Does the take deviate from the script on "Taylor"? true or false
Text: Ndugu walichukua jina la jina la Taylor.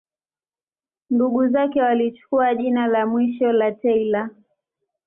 false